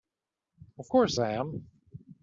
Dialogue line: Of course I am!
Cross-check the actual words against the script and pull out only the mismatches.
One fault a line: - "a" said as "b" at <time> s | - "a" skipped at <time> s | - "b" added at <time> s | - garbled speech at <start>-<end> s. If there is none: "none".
none